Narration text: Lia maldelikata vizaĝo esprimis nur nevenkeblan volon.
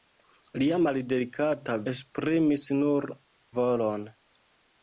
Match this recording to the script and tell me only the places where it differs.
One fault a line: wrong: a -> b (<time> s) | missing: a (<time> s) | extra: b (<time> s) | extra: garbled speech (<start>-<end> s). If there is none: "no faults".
missing: vizaĝo (1.8 s)
missing: nevenkeblan (3.1 s)